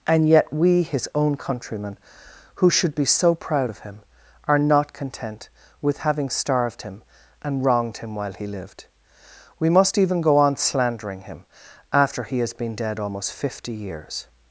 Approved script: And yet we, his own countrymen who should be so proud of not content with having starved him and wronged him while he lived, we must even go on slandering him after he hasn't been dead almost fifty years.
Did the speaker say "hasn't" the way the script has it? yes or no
no